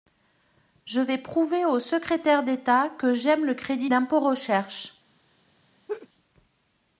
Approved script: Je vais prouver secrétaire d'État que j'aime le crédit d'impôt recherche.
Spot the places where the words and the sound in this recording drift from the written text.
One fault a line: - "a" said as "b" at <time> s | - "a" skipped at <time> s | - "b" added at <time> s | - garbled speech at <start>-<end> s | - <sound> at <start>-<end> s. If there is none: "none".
- "au" added at 1.6 s
- laugh at 5.9-6.1 s